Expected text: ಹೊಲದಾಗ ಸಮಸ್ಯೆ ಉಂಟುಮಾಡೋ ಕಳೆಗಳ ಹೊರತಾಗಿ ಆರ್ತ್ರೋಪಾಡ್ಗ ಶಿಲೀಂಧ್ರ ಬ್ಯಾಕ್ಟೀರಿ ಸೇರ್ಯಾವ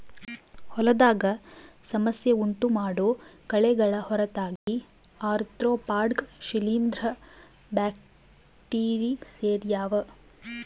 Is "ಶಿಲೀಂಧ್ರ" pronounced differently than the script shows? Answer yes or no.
no